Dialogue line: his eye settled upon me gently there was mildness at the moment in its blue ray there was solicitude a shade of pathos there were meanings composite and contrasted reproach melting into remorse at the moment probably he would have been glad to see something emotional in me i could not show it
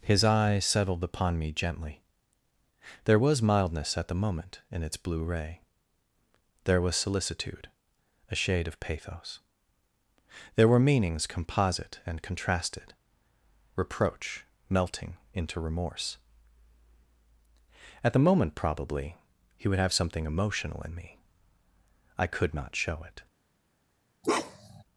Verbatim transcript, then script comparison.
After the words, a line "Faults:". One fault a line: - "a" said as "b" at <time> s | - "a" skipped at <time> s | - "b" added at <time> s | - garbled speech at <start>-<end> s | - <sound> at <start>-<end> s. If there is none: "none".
his eye settled upon me gently there was mildness at the moment in its blue ray there was solicitude a shade of pathos there were meanings composite and contrasted reproach melting into remorse at the moment probably he would have something emotional in me i could not show it
Faults:
- "been glad to see" skipped at 19.9 s
- bark at 24.2-24.8 s